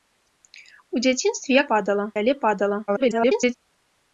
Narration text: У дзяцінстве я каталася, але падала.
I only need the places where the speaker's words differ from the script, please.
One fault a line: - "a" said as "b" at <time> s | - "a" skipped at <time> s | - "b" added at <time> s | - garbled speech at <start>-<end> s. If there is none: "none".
- "каталася" said as "падала" at 1.7 s
- garbled speech at 2.9-3.5 s